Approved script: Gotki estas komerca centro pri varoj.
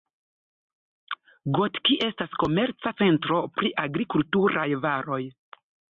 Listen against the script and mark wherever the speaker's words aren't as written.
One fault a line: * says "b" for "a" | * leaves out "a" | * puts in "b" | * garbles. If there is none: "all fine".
* puts in "agrikulturaj"